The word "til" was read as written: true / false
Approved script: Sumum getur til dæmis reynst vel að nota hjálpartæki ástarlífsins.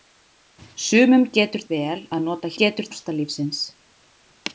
false